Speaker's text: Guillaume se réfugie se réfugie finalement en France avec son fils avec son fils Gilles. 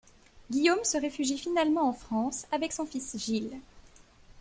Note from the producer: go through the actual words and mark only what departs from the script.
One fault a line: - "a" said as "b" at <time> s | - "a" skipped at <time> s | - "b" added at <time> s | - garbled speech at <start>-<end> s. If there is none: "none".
- "se réfugie" skipped at 1.4 s
- "avec son fils" skipped at 3.2 s